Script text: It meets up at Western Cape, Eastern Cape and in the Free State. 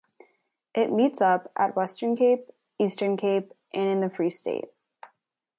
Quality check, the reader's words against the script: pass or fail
pass